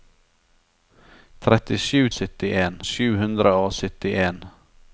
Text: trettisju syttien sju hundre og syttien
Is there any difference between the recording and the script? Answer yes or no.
no